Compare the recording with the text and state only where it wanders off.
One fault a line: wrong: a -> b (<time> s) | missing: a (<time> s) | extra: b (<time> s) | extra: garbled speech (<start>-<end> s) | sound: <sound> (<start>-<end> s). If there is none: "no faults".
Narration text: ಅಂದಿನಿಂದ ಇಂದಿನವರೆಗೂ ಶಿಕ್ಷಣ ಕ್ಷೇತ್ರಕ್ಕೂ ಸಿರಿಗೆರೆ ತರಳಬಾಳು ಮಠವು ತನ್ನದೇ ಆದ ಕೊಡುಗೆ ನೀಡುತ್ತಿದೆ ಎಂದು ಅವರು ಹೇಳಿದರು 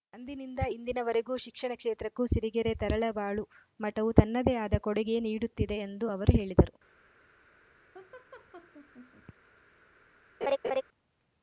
sound: laugh (7.9-9.3 s)
sound: laugh (10.4-10.8 s)